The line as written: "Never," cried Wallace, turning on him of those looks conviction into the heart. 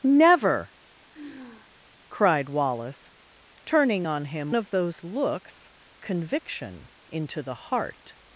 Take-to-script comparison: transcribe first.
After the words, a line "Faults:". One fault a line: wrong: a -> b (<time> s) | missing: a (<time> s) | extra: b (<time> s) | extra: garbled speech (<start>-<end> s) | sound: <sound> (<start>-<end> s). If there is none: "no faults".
"Never," cried Wallace, turning on him of those looks conviction into the heart.
Faults:
sound: sigh (1.1-1.7 s)